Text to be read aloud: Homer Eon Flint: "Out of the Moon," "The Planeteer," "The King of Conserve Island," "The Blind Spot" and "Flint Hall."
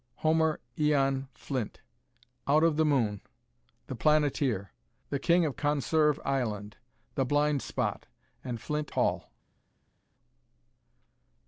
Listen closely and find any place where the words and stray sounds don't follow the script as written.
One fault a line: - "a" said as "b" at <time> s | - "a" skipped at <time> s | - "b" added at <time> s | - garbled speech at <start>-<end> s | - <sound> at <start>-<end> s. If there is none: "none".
none